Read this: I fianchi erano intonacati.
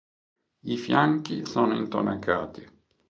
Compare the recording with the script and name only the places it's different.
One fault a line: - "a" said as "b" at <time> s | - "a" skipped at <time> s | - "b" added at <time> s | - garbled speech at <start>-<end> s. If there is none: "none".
- "erano" said as "sono" at 1.4 s